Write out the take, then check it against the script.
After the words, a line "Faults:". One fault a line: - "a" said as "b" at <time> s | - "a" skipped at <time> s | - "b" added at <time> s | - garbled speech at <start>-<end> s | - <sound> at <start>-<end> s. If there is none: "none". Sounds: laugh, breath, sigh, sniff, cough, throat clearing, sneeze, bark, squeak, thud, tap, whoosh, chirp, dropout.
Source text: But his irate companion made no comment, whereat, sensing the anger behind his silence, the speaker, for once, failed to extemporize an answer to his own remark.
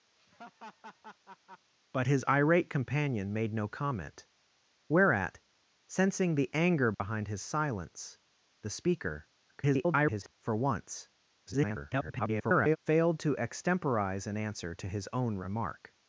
But his irate companion made no comment, whereat, sensing the anger behind his silence, the speaker, [garbled] for once, [garbled] failed to extemporize an answer to his own remark.
Faults:
- laugh at 0.2-1.7 s
- dropout at 6.9-7.0 s
- garbled speech at 9.5-10.3 s
- garbled speech at 11.5-12.8 s